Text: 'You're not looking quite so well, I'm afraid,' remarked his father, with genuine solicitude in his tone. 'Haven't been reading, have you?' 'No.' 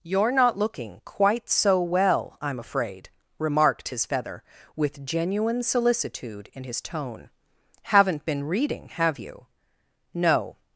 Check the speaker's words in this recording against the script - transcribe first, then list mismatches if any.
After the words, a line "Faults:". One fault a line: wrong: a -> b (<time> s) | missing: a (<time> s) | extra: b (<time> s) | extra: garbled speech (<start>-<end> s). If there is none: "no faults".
'You're not looking quite so well, I'm afraid,' remarked his feather, with genuine solicitude in his tone. 'Haven't been reading, have you?' 'No.'
Faults:
wrong: father -> feather (4.0 s)